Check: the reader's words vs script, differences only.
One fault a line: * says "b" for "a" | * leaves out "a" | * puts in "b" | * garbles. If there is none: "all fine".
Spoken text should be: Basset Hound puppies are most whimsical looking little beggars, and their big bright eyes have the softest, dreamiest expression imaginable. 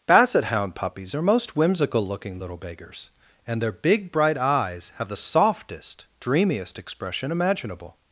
all fine